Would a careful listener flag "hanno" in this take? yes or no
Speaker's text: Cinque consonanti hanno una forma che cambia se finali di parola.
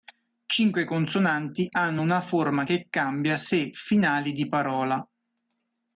no